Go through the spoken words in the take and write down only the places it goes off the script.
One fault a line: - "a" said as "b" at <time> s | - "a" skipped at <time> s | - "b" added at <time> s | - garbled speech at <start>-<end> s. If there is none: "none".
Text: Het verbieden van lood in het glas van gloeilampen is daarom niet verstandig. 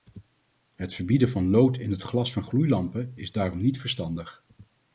none